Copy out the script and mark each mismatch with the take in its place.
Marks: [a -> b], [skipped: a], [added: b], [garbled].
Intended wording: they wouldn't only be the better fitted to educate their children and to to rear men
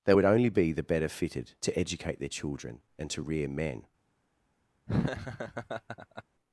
they [wouldn't -> would] only be the better fitted to educate their children and to [skipped: to] rear men